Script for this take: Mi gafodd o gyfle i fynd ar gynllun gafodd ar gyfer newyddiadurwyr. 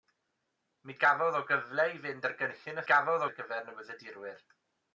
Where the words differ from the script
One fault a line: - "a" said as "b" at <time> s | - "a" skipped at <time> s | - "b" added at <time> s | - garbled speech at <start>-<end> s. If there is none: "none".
none